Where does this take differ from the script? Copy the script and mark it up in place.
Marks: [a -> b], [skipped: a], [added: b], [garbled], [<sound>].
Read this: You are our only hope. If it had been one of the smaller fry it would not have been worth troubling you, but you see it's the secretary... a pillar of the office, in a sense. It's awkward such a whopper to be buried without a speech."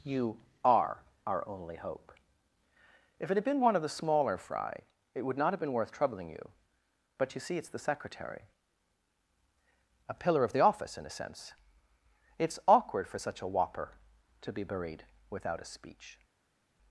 You are our only hope. If it had been one of the smaller fry it would not have been worth troubling you, but you see it's the secretary... a pillar of the office, in a sense. It's awkward [added: for] such a whopper to be buried without a speech."